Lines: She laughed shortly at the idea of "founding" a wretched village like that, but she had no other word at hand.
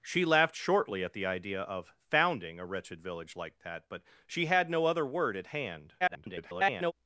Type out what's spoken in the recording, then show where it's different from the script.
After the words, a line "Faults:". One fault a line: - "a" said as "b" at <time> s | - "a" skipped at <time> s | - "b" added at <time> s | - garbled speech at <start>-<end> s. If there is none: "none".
She laughed shortly at the idea of "founding" a wretched village like that, but she had no other word at hand. [garbled]
Faults:
- garbled speech at 6.0-6.9 s